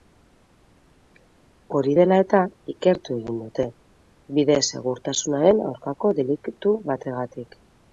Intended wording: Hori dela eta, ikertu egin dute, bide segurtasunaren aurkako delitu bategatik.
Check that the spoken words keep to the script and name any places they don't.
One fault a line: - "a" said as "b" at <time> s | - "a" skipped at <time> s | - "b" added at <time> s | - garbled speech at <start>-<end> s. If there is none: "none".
none